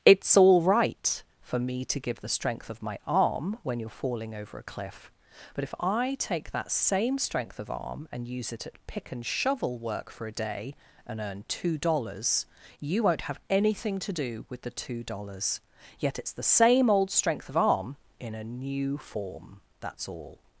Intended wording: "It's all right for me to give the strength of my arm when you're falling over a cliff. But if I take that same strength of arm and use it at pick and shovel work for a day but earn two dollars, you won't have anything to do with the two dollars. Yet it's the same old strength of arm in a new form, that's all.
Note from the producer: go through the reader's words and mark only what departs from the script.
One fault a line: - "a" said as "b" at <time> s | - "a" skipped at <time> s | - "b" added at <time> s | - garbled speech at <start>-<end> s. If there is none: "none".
- "but" said as "and" at 11.1 s